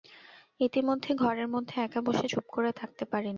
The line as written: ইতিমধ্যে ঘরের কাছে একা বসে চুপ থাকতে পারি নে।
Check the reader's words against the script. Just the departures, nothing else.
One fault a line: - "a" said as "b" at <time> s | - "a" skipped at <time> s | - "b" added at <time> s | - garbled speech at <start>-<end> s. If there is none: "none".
- "কাছে" said as "মধ্যে" at 1.5 s
- "করে" added at 2.5 s